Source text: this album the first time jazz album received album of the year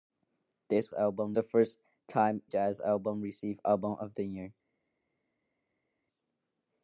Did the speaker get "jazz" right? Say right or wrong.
right